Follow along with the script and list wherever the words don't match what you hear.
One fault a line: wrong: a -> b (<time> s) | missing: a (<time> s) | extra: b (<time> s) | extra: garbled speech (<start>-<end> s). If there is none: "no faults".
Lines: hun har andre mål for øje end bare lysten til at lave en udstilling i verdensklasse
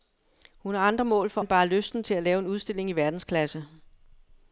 missing: øje (1.4 s)